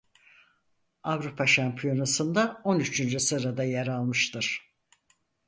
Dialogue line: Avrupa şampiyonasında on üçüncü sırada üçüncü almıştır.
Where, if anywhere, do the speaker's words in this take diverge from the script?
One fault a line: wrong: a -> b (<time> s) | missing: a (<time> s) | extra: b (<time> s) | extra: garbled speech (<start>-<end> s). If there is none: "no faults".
wrong: üçüncü -> yer (3.6 s)